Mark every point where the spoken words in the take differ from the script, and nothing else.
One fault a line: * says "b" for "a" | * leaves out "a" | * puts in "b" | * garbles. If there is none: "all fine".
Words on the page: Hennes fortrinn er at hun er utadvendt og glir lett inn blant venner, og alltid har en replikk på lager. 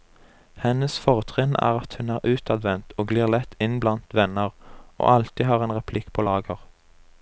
all fine